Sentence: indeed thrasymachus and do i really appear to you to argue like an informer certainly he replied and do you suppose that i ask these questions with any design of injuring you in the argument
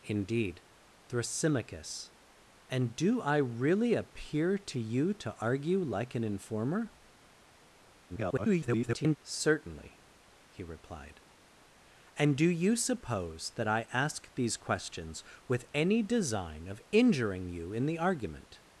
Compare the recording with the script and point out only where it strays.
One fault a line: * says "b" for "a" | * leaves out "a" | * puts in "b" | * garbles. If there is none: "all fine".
* garbles